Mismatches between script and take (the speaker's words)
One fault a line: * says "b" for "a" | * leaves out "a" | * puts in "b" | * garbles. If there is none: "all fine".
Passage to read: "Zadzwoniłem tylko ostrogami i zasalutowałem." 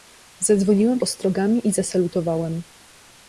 * leaves out "tylko"